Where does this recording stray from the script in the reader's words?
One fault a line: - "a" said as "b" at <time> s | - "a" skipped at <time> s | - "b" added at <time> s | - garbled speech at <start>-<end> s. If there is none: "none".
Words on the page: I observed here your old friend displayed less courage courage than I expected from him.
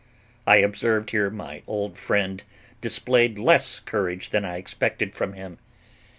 - "your" said as "my" at 1.3 s
- "courage" skipped at 4.3 s